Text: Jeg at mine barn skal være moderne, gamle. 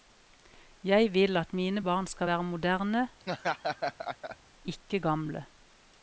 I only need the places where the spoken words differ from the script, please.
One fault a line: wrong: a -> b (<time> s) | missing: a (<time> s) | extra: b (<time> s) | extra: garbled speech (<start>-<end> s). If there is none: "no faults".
extra: vil (1.1 s)
extra: ikke (4.6 s)